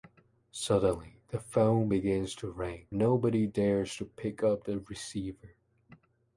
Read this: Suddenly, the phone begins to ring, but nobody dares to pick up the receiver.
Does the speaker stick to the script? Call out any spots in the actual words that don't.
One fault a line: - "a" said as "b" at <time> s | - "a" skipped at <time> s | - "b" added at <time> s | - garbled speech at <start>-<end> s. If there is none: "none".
- "but" skipped at 2.9 s